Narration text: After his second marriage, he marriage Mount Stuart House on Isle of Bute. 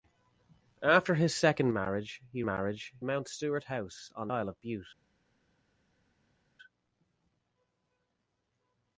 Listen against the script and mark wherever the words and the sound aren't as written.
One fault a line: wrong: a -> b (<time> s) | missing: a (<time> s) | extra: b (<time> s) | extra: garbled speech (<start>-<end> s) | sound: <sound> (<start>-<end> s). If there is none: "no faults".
no faults